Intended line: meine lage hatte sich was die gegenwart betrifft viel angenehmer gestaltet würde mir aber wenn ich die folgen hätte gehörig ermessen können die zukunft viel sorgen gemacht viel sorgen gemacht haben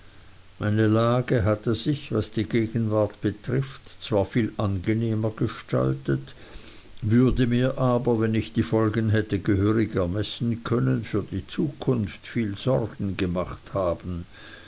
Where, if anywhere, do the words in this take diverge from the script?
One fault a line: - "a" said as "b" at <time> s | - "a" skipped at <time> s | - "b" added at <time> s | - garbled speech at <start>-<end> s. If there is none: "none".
- "zwar" added at 4.0 s
- "für" added at 11.0 s
- "viel sorgen gemacht" skipped at 13.8 s